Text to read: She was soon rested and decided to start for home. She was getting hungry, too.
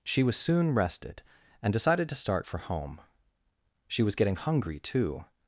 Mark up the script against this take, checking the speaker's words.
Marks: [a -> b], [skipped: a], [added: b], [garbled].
She was soon rested and decided to start for home. She was getting hungry, too.